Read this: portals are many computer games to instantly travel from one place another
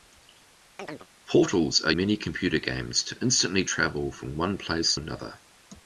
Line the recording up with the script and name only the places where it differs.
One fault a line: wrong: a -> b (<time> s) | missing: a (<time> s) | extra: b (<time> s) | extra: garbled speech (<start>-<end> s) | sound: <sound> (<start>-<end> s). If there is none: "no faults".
sound: chirp (0.8-1.1 s)